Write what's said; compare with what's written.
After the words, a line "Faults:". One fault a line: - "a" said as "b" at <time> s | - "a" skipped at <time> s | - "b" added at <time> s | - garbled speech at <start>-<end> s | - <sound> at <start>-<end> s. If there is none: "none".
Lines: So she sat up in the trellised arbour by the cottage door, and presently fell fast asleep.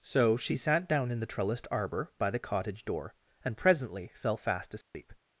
So she sat down in the trellised arbour by the cottage door, and presently fell fast asleep.
Faults:
- "up" said as "down" at 0.9 s
- dropout at 4.8-4.9 s